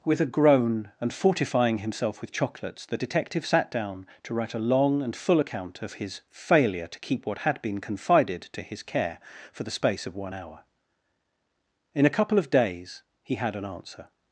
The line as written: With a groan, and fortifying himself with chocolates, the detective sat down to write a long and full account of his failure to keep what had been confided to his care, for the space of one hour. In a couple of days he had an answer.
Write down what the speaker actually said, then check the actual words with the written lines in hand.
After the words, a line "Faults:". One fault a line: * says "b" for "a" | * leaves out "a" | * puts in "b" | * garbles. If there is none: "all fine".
With a groan, and fortifying himself with chocolates, the detective sat down to write a long and full account of his failure to keep what had been confided to his care, for the space of one hour. In a couple of days he had an answer.
Faults:
all fine